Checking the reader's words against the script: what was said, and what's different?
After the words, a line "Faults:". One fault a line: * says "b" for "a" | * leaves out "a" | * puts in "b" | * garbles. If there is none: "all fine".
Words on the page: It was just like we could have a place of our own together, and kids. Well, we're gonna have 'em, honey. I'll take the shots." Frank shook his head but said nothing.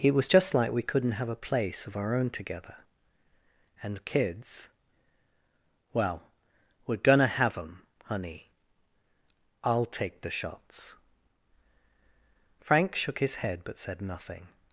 It was just like we couldn't have a place of our own together, and kids. Well, we're gonna have 'em, honey. I'll take the shots." Frank shook his head but said nothing.
Faults:
* says "couldn't" for "could"